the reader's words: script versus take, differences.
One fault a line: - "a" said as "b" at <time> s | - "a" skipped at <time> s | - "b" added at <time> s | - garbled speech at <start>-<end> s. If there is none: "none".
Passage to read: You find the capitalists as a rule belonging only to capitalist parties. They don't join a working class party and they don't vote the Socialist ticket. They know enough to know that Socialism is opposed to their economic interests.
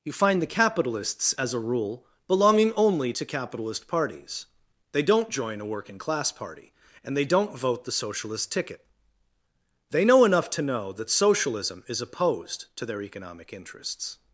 none